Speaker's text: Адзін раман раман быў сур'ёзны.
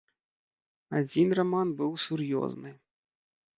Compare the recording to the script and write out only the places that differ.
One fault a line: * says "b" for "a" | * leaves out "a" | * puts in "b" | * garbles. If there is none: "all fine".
* leaves out "раман"